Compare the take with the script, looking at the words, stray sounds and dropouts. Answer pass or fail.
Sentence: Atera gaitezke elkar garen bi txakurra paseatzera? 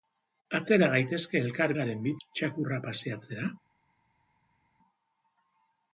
pass